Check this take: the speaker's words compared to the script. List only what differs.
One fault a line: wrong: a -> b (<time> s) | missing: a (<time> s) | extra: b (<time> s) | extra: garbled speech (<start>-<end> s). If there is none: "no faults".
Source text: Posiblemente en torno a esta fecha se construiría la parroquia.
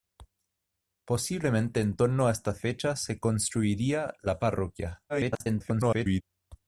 extra: garbled speech (5.1-6.2 s)